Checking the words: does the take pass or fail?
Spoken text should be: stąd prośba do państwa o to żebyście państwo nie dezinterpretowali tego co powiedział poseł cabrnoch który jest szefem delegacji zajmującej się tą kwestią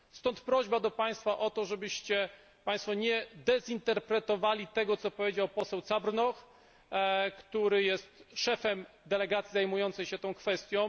pass